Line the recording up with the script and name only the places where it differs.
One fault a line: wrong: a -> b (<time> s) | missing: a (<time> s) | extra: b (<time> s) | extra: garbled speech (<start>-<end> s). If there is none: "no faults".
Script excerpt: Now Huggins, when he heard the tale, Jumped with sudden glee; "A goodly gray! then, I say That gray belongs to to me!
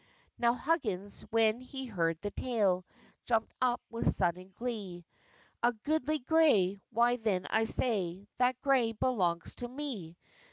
extra: up (3.6 s)
extra: why (6.9 s)
missing: to (9.7 s)